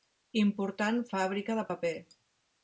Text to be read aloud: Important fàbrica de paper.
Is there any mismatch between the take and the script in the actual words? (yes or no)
no